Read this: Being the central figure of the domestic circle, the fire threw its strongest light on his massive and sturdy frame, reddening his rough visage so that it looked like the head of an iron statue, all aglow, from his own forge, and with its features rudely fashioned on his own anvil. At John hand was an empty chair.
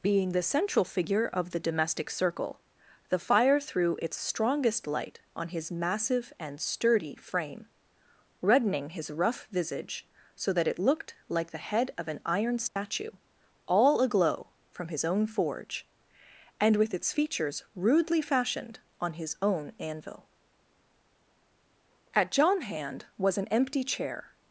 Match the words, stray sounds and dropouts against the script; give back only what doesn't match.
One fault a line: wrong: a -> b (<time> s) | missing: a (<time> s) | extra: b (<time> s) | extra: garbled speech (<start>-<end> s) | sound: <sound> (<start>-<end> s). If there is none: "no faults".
sound: dropout (12.7-12.8 s)